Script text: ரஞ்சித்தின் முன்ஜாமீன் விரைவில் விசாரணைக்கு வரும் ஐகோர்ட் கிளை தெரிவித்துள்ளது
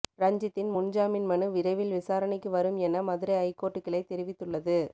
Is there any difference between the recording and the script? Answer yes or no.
yes